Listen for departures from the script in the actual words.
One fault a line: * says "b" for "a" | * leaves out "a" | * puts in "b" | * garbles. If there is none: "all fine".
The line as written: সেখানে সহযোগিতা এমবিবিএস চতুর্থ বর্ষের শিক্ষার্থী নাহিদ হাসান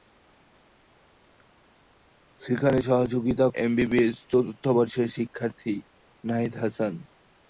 all fine